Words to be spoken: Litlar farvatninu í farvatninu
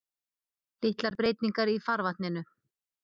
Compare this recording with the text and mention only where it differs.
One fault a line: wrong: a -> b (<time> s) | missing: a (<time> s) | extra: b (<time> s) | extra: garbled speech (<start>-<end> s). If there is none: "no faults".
wrong: farvatninu -> breytingar (1.2 s)